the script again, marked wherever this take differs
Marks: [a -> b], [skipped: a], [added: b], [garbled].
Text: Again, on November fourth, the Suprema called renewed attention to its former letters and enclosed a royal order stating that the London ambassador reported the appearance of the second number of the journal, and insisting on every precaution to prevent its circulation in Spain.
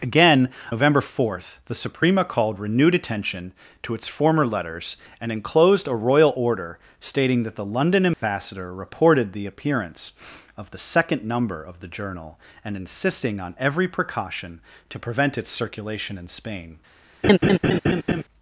Again, [skipped: on] November fourth, the Suprema called renewed attention to its former letters and enclosed a royal order stating that the London ambassador reported the appearance of the second number of the journal, and insisting on every precaution to prevent its circulation in Spain.